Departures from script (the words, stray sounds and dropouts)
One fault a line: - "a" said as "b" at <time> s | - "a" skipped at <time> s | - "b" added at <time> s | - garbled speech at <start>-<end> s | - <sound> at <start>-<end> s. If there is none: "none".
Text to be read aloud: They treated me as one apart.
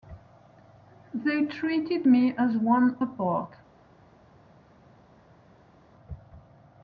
none